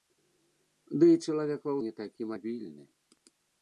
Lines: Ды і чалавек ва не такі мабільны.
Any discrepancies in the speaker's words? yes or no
no